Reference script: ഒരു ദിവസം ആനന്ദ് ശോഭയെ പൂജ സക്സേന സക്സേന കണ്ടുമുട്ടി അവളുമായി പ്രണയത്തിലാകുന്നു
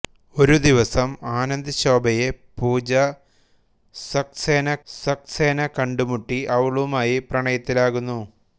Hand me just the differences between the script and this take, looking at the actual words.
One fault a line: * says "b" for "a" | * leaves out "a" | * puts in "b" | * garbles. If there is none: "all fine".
all fine